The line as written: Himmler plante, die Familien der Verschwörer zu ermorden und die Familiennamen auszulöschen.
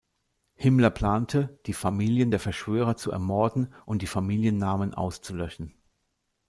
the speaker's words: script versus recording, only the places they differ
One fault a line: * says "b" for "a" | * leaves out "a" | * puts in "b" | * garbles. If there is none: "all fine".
all fine